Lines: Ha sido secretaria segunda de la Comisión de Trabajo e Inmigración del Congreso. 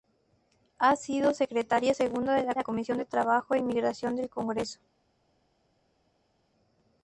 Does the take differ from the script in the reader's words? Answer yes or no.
yes